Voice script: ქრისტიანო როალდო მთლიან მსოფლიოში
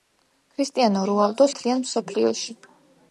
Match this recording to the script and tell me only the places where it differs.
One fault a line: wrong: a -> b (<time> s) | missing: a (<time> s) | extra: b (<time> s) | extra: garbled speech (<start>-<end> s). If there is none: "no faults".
no faults